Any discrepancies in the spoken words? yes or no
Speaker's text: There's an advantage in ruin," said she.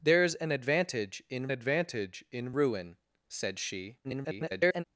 yes